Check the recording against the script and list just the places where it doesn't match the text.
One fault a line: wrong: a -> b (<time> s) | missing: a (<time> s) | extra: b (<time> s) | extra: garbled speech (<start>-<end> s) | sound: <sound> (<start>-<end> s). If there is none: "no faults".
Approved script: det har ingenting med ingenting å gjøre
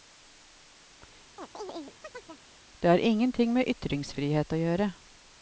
sound: chirp (1.4-2.4 s)
wrong: ingenting -> ytringsfrihet (3.7 s)